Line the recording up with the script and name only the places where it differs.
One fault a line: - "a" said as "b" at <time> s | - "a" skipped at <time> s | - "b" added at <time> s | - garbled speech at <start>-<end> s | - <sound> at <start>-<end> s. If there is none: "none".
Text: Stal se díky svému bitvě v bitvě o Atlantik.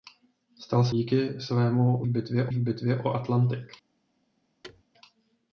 - thud at 4.6-4.8 s